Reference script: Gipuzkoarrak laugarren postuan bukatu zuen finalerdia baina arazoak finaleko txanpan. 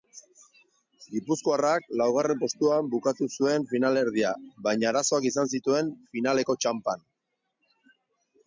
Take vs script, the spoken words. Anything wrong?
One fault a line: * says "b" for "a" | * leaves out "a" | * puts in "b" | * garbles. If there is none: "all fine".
* puts in "izan zituen"